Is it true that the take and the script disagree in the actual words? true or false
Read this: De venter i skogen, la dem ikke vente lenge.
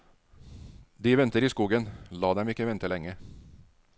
false